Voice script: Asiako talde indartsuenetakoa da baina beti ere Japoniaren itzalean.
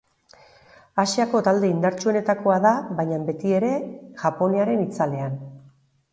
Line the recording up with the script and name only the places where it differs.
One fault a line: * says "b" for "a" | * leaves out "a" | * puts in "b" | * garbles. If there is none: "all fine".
all fine